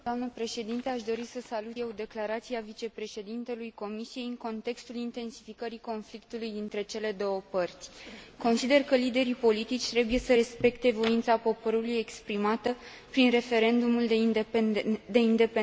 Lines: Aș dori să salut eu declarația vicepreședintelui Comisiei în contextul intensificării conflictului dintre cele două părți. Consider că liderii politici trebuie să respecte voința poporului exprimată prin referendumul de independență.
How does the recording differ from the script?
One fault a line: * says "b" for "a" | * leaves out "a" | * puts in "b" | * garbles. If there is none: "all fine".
all fine